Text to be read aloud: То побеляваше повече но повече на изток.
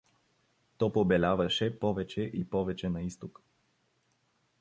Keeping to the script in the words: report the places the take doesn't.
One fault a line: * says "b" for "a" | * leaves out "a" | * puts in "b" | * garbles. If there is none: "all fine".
* says "и" for "но"